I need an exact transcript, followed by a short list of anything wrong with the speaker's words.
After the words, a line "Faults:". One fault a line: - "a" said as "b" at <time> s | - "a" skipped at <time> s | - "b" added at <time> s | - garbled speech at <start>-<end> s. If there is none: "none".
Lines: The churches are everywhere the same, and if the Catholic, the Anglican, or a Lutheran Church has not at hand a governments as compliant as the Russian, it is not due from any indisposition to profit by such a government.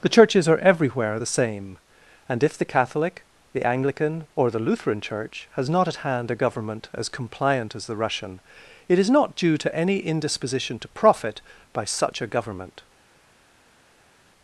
The churches are everywhere the same, and if the Catholic, the Anglican, or the Lutheran Church has not at hand a government as compliant as the Russian, it is not due to any indisposition to profit by such a government.
Faults:
- "a" said as "the" at 4.5 s
- "governments" said as "government" at 6.4 s
- "from" said as "to" at 9.6 s